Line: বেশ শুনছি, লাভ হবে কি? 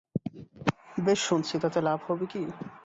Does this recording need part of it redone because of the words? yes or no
yes